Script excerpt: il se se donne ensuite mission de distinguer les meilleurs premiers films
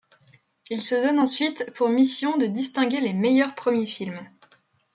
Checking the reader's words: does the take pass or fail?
fail